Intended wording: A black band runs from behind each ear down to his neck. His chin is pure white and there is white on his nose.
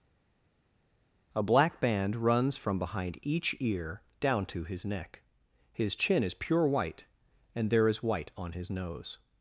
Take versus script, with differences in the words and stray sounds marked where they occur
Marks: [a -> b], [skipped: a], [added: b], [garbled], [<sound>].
A black band runs from behind each ear down to his neck. His chin is pure white and there is white on his nose.